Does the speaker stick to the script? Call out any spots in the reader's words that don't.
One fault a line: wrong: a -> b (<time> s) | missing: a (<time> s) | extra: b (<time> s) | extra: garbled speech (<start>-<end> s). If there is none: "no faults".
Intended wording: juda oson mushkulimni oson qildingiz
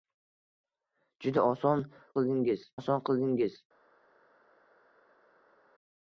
wrong: mushkulimni -> qildingiz (2.2 s)